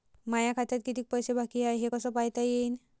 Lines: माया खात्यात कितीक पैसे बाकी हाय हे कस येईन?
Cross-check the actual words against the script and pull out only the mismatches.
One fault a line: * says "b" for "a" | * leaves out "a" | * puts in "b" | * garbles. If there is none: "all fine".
* puts in "पायता"